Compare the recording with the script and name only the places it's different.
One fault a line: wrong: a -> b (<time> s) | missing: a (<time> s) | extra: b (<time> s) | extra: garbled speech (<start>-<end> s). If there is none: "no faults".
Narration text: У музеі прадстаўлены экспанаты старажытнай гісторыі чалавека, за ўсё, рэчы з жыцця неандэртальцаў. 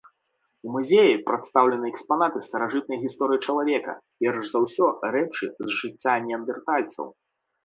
extra: перш (4.2 s)